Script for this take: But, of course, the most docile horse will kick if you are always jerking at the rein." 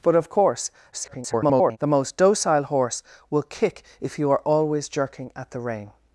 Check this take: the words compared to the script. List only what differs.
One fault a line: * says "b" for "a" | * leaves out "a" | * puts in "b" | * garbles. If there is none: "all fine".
* garbles